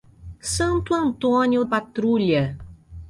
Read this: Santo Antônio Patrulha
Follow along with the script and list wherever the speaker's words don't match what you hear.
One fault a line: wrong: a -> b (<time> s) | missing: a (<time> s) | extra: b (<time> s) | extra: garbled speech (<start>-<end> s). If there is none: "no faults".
no faults